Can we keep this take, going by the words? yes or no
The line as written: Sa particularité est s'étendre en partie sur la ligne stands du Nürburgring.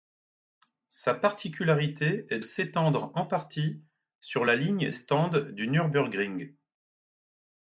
yes